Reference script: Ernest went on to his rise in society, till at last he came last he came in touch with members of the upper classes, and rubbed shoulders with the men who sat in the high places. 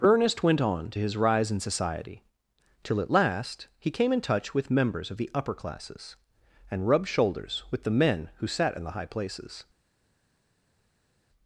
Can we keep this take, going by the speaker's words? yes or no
no